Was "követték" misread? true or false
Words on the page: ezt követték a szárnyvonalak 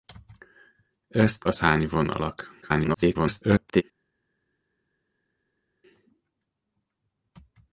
true